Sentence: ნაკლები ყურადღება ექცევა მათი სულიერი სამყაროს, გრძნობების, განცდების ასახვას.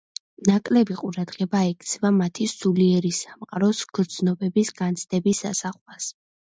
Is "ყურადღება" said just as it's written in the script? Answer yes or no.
yes